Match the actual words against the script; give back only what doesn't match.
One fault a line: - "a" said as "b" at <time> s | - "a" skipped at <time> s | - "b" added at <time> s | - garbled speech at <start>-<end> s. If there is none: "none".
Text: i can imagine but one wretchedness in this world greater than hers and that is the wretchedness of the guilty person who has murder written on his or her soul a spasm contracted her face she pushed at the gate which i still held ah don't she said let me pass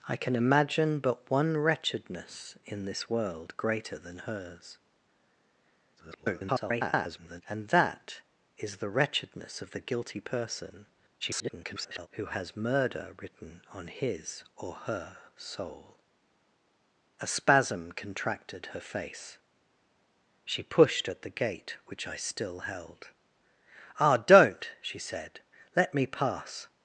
- garbled speech at 6.0-7.4 s
- garbled speech at 11.2-12.1 s